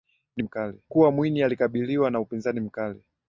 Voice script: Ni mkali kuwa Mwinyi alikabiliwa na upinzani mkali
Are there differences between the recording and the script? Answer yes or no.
no